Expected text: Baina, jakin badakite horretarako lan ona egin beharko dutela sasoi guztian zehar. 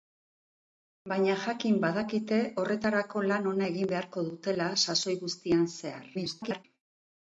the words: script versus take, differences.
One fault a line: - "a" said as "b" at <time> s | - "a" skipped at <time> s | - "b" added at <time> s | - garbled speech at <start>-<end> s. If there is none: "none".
- garbled speech at 6.1-6.6 s